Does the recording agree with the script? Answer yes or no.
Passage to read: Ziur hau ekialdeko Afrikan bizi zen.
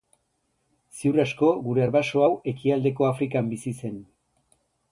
no